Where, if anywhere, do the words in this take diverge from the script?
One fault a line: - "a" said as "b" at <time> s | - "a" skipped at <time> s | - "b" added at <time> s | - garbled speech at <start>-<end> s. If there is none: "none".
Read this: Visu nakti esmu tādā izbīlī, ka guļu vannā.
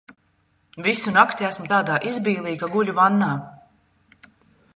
none